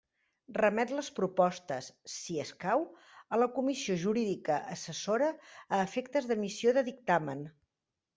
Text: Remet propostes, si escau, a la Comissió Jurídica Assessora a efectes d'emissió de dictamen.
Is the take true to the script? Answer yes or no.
no